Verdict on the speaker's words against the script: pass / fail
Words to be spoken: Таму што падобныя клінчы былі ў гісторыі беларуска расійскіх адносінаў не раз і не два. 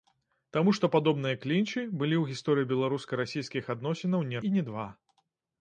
fail